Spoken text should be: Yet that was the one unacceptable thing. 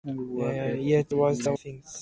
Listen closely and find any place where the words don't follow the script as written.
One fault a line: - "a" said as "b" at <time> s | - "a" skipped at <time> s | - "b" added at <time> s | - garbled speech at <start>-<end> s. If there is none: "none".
- "that" skipped at 1.1 s
- "one unacceptable" skipped at 1.5 s